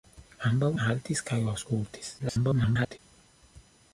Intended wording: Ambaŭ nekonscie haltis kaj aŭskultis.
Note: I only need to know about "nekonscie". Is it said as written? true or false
false